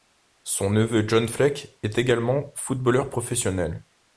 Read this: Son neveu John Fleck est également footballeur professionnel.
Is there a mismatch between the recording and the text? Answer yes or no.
no